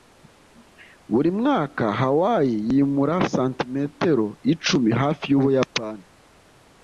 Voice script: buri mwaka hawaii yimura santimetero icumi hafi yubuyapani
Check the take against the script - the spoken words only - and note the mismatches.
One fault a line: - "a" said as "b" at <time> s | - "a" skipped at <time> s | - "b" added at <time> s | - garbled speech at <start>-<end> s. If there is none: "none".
none